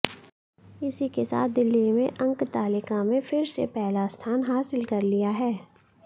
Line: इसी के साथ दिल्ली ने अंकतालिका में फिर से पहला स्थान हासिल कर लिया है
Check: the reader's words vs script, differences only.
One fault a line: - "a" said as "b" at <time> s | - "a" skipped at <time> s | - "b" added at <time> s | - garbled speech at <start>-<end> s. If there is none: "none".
none